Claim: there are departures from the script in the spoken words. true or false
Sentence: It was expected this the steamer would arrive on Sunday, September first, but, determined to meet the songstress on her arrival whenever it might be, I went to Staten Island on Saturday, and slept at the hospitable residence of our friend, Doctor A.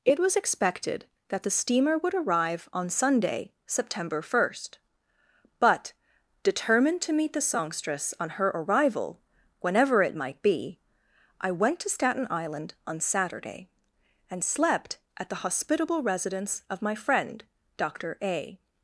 true